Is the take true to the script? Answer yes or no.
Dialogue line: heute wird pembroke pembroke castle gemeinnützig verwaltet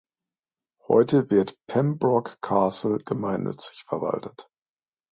no